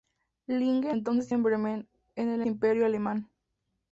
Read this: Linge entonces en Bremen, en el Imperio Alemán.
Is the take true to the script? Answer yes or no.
yes